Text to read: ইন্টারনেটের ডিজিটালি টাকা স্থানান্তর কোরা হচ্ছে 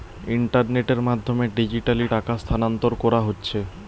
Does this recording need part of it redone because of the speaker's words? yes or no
yes